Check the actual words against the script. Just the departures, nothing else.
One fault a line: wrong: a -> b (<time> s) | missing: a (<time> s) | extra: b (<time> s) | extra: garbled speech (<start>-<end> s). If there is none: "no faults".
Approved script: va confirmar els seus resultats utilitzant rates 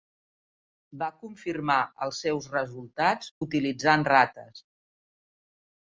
no faults